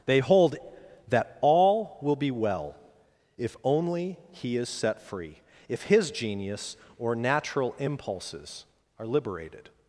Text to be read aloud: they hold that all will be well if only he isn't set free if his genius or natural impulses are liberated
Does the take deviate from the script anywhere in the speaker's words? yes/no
yes